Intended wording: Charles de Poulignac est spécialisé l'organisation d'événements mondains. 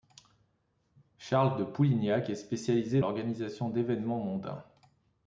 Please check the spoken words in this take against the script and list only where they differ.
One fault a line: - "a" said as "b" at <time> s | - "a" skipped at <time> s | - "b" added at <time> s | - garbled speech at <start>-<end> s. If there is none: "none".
none